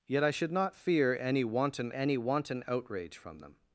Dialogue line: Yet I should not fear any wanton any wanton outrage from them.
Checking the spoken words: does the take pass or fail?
pass